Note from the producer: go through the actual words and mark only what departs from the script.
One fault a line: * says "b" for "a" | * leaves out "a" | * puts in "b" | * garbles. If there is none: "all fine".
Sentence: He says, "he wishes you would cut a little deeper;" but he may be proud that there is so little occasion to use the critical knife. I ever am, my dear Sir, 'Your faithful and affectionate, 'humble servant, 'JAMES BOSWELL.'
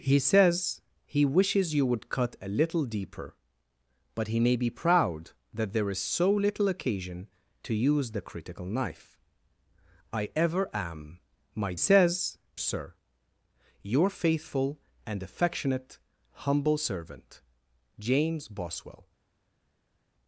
* says "says" for "dear"